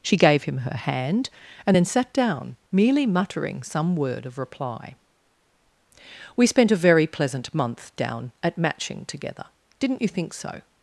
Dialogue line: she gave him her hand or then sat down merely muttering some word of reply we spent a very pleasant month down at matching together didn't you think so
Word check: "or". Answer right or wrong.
wrong